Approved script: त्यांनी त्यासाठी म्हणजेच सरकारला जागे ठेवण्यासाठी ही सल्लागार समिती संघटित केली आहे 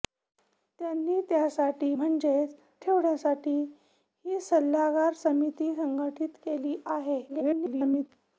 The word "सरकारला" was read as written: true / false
false